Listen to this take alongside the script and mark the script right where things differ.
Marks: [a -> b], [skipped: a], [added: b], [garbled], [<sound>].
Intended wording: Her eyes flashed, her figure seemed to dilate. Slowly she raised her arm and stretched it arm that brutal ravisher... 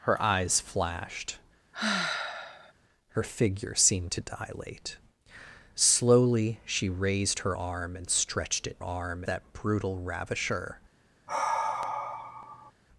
Her eyes flashed, [sigh] her figure seemed to dilate. Slowly she raised her arm and stretched it arm that brutal ravisher... [sigh]